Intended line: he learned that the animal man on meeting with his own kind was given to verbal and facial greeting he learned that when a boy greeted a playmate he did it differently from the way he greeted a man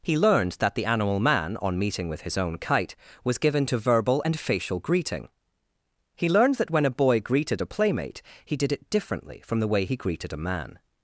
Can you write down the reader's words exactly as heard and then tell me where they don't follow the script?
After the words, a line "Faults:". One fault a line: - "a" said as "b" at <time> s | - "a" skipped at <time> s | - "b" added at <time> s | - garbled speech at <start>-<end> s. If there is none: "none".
he learned that the animal man on meeting with his own kite was given to verbal and facial greeting he learned that when a boy greeted a playmate he did it differently from the way he greeted a man
Faults:
- "kind" said as "kite" at 2.6 s